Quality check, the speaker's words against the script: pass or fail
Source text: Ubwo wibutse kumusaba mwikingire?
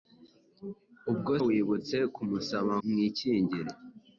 pass